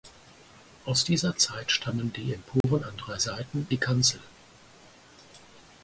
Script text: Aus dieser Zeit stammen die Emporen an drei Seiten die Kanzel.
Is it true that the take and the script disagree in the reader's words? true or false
false